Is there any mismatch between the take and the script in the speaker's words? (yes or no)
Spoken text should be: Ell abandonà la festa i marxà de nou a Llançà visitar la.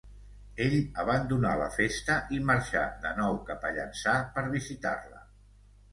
yes